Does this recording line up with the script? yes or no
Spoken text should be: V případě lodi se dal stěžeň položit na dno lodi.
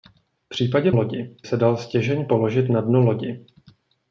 yes